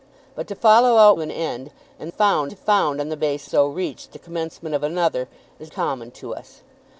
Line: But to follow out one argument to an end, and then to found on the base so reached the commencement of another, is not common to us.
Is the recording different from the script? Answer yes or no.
yes